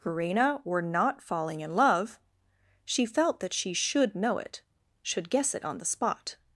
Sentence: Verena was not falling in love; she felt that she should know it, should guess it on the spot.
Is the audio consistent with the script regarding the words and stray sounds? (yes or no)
no